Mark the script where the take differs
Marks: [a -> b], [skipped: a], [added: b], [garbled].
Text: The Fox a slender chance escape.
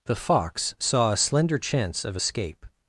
The Fox [added: saw] a slender chance [added: of] escape.